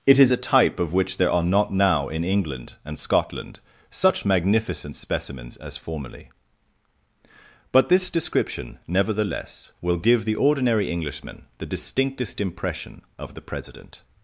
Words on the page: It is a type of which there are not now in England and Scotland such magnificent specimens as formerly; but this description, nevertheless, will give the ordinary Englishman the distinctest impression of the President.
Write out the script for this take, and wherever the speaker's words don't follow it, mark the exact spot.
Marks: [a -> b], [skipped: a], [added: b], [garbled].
It is a type of which there are not now in England and Scotland such magnificent specimens as formerly; but this description, nevertheless, will give the ordinary Englishman the distinctest impression of the President.